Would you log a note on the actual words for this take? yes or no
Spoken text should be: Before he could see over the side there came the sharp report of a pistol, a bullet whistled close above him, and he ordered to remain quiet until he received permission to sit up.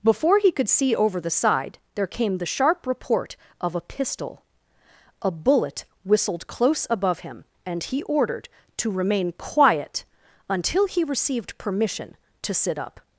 no